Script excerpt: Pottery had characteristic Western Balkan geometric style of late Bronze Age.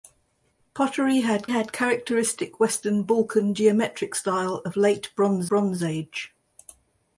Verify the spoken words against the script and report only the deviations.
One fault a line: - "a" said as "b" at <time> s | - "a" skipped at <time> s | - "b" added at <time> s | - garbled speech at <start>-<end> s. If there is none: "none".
- "had" added at 1.5 s
- "Bronze" added at 5.5 s